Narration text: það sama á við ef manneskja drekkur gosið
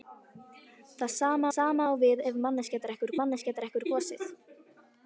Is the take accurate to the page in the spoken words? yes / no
no